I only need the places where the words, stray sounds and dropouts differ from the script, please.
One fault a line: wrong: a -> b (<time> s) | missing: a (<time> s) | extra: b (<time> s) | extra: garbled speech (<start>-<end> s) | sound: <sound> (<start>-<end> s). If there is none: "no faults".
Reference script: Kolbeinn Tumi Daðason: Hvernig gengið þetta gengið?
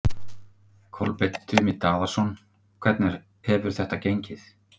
wrong: gengið -> hefur (3.5 s)